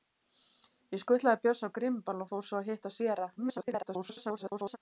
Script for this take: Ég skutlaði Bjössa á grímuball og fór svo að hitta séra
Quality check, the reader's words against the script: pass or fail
fail